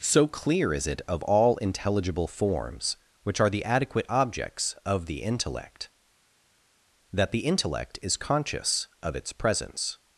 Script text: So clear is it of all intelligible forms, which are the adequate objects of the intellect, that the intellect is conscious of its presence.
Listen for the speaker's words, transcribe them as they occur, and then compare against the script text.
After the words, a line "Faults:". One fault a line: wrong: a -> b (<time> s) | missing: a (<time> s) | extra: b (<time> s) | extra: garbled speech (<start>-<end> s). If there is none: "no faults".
So clear is it of all intelligible forms, which are the adequate objects of the intellect, that the intellect is conscious of its presence.
Faults:
no faults